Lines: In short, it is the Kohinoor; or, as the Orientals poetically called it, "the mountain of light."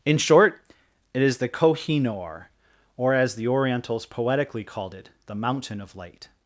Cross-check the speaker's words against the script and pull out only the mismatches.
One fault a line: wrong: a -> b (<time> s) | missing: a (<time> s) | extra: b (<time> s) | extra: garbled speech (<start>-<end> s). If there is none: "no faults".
no faults